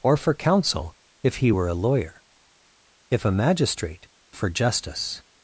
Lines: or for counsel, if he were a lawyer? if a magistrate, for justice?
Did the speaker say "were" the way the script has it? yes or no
yes